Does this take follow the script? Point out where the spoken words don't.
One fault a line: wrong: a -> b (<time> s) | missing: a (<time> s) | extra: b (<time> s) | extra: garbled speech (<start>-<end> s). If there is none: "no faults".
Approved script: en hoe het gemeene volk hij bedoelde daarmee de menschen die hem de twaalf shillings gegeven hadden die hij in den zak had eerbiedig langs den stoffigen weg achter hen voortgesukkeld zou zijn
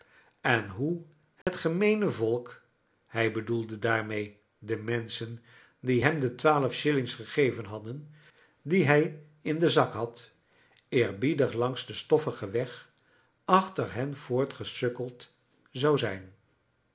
no faults